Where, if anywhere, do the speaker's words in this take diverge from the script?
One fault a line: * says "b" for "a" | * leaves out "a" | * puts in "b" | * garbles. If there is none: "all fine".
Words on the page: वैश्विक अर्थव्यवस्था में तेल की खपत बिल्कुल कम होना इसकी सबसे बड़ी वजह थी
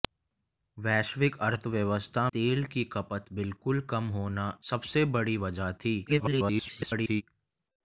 * leaves out "में"
* leaves out "इसकी"
* garbles